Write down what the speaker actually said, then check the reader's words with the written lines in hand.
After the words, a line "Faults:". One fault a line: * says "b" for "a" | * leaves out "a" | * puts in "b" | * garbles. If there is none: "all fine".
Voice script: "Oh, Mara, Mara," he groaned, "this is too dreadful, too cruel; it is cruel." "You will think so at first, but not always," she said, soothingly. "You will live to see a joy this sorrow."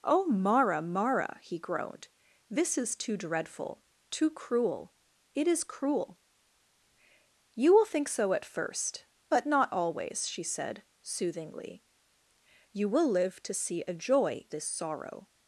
"Oh, Mara, Mara," he groaned, "this is too dreadful, too cruel; it is cruel." "You will think so at first, but not always," she said, soothingly. "You will live to see a joy this sorrow."
Faults:
all fine